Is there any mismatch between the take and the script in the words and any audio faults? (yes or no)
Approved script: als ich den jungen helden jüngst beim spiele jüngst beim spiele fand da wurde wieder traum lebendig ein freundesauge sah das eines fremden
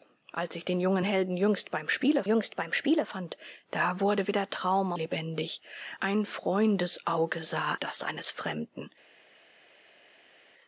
no